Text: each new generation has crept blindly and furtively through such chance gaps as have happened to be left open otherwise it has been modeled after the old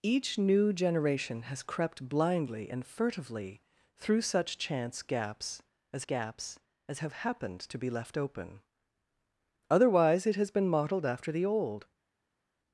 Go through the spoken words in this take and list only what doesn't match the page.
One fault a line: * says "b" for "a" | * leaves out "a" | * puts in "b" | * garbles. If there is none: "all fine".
* puts in "gaps as"